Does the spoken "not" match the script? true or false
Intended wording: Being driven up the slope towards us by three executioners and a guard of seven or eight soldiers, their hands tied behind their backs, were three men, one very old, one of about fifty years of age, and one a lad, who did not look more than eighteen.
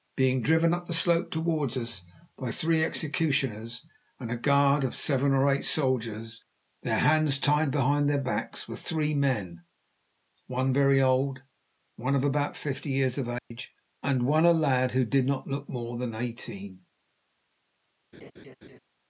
true